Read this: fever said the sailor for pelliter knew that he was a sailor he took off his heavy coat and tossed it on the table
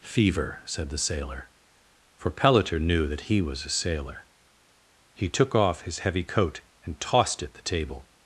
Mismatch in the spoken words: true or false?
true